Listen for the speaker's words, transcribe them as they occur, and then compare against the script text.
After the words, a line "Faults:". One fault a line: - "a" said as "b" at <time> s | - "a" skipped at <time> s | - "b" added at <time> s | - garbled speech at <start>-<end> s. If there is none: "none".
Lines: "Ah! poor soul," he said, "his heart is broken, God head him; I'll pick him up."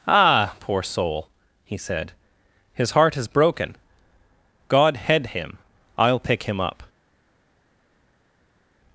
"Ah! poor soul," he said, "his heart is broken, God head him; I'll pick him up."
Faults:
none